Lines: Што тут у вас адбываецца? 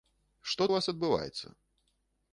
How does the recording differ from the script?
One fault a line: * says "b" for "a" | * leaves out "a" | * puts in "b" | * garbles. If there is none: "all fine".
* leaves out "тут"